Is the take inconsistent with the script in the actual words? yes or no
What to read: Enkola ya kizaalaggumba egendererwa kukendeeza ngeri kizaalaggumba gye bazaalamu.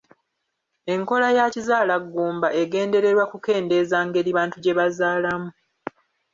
yes